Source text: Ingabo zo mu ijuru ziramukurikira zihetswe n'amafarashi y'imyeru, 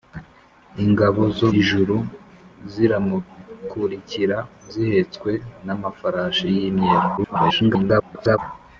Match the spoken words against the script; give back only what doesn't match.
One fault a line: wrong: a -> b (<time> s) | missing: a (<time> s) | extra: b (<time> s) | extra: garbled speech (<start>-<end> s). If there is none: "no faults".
missing: mu (1.5 s)
extra: garbled speech (7.2-8.4 s)